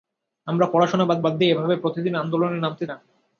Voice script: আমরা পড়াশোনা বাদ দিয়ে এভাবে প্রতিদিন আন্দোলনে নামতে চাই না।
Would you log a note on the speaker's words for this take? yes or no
yes